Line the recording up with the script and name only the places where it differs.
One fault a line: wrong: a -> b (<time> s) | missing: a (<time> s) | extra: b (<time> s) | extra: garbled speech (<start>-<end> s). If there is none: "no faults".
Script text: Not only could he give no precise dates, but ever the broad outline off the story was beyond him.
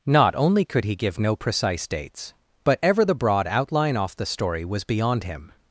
no faults